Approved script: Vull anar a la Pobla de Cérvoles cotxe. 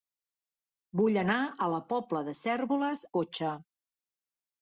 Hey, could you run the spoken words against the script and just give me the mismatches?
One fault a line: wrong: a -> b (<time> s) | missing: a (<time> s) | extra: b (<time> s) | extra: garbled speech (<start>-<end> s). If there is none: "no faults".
no faults